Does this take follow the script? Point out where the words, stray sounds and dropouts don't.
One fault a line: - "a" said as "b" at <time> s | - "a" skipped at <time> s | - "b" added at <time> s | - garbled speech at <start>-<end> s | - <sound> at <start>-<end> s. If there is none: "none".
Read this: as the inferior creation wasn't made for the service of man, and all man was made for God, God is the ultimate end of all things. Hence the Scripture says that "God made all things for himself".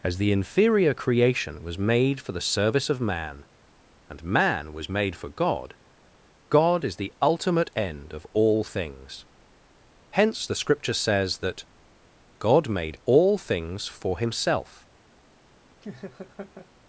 - "wasn't" said as "was" at 1.6 s
- "all" skipped at 4.2 s
- laugh at 15.8-16.7 s